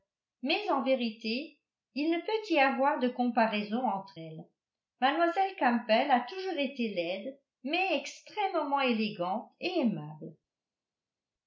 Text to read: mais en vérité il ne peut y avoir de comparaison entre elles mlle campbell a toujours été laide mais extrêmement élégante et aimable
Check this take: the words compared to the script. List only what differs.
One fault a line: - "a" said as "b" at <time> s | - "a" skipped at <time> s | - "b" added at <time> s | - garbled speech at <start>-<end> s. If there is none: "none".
none